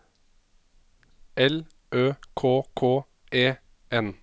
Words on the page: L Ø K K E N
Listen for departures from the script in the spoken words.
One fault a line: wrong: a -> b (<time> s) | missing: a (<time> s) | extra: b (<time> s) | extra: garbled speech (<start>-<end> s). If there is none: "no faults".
no faults